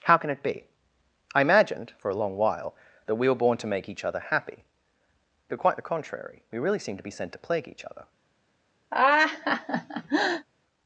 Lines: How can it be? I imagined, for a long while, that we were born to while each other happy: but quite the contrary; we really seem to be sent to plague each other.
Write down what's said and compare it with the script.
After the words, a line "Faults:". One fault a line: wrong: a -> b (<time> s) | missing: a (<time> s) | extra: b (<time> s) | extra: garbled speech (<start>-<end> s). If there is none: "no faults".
How can it be? I imagined, for a long while, that we were born to make each other happy: but quite the contrary; we really seem to be sent to plague each other.
Faults:
wrong: while -> make (3.7 s)